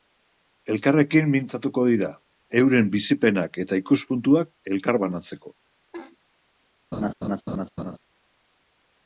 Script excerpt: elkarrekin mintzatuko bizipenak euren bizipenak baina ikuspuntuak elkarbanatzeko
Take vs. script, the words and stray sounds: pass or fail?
fail